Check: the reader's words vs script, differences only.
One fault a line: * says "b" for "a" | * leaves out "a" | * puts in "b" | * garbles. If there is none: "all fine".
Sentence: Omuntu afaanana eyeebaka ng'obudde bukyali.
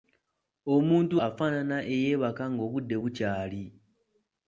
all fine